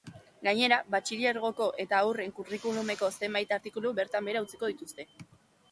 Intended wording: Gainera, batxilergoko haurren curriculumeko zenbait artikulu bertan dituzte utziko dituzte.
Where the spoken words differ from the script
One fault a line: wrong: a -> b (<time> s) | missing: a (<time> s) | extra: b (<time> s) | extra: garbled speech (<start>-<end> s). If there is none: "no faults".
extra: eta (1.9 s)
wrong: dituzte -> behera (4.3 s)